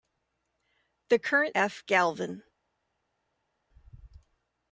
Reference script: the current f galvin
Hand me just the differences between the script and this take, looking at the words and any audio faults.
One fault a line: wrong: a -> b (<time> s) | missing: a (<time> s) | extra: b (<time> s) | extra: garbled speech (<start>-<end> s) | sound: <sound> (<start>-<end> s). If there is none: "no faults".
no faults